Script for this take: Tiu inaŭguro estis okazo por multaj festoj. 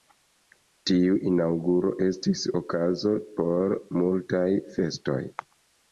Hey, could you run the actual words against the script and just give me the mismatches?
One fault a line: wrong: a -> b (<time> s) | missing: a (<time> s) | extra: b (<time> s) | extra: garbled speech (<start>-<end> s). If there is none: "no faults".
no faults